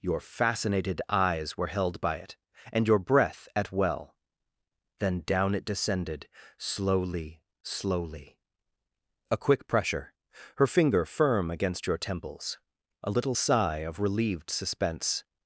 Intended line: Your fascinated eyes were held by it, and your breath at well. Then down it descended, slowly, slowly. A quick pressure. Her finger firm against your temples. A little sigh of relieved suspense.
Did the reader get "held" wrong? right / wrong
right